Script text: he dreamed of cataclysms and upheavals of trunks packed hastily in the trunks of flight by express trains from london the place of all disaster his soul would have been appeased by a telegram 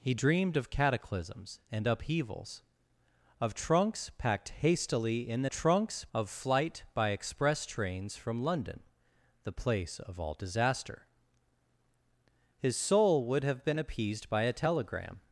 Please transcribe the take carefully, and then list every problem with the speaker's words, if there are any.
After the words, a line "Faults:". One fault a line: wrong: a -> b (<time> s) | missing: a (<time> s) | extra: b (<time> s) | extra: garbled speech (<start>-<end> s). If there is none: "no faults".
he dreamed of cataclysms and upheavals of trunks packed hastily in the trunks of flight by express trains from london the place of all disaster his soul would have been appeased by a telegram
Faults:
no faults